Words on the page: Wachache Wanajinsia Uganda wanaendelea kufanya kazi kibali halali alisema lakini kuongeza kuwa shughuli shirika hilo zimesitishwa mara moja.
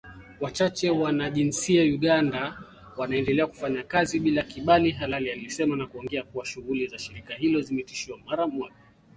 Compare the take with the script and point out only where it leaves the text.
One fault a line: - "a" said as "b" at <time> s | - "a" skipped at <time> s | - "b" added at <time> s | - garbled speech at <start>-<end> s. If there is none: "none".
- "bila" added at 4.2 s
- "lakini" said as "na" at 5.8 s
- "za" added at 6.9 s